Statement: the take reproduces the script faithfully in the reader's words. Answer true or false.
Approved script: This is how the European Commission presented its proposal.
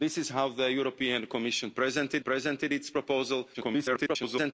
false